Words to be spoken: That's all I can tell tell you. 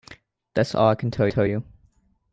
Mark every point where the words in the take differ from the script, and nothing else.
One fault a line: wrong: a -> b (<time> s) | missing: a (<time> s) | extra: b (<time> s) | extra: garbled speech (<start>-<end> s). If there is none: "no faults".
no faults